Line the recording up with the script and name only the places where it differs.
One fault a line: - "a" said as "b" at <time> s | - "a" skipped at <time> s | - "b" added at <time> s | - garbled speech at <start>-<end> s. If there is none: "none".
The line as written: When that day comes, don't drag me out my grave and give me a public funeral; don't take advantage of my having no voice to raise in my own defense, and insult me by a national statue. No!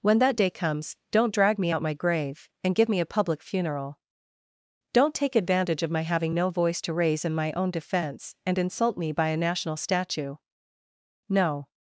none